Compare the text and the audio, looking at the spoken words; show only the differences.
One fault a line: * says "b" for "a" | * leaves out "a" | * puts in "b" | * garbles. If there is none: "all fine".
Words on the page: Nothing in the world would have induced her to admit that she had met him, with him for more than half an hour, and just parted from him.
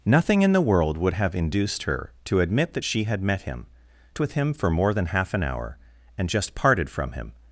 all fine